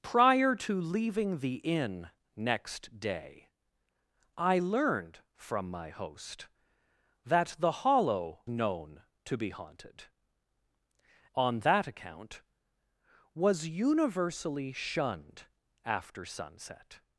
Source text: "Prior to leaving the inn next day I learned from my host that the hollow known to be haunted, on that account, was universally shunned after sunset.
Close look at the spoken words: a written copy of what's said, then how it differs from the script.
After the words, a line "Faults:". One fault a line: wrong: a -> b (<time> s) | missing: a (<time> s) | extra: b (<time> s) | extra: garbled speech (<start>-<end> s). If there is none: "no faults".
"Prior to leaving the inn next day I learned from my host that the hollow known to be haunted, on that account, was universally shunned after sunset.
Faults:
no faults